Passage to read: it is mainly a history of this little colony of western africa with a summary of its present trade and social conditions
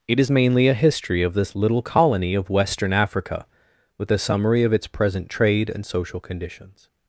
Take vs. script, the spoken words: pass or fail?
pass